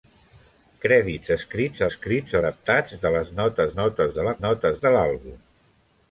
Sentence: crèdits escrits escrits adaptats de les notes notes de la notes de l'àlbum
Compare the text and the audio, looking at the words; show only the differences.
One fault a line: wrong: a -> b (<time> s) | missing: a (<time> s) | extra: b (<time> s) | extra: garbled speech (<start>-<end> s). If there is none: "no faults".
no faults